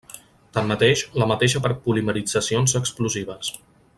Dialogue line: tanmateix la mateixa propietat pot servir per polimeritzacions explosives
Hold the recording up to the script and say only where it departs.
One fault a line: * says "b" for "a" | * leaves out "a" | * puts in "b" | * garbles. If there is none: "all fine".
* leaves out "propietat pot servir"